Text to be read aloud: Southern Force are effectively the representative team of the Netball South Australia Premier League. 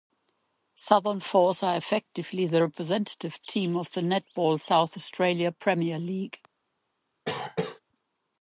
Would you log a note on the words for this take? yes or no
no